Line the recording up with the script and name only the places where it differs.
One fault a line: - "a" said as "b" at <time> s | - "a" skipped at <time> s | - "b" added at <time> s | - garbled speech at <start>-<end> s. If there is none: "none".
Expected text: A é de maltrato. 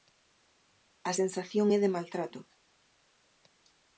- "sensación" added at 1.2 s